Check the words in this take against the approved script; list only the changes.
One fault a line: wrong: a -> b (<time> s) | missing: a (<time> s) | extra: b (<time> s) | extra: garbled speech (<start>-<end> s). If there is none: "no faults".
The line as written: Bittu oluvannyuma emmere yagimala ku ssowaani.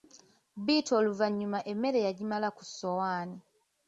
no faults